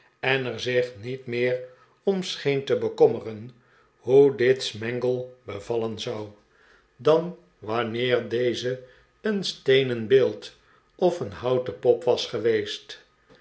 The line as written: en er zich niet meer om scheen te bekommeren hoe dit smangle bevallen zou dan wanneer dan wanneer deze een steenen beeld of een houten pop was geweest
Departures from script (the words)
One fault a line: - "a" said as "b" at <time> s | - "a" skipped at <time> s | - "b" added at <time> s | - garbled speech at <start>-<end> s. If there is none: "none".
- "dan wanneer" skipped at 8.3 s